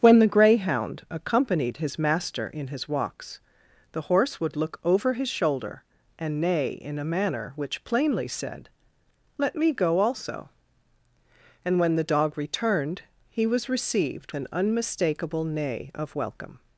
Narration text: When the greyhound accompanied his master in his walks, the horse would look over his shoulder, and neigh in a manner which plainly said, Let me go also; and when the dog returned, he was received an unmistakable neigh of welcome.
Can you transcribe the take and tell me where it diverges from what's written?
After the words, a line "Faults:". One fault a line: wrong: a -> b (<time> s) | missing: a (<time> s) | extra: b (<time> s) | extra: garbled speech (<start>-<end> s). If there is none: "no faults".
When the greyhound accompanied his master in his walks, the horse would look over his shoulder, and neigh in a manner which plainly said, Let me go also; and when the dog returned, he was received an unmistakable neigh of welcome.
Faults:
no faults